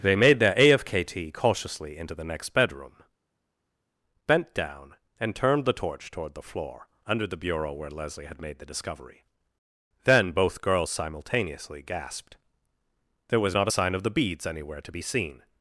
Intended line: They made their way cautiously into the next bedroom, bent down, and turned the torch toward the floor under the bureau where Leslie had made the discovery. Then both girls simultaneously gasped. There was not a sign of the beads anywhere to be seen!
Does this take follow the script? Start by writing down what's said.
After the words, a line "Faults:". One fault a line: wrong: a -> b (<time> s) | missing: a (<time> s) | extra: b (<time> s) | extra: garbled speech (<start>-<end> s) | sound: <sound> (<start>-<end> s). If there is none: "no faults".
They made their afkt cautiously into the next bedroom, bent down, and turned the torch toward the floor under the bureau where Leslie had made the discovery. Then both girls simultaneously gasped. There was not a sign of the beads anywhere to be seen!
Faults:
wrong: way -> afkt (0.6 s)